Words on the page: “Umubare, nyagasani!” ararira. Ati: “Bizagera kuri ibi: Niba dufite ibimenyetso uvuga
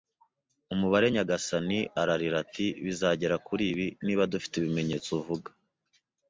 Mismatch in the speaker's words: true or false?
false